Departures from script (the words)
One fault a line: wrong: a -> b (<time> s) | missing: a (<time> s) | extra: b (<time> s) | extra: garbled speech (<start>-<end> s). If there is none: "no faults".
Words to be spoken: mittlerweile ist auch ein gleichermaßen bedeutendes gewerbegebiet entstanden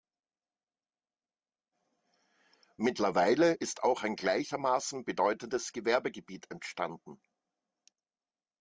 no faults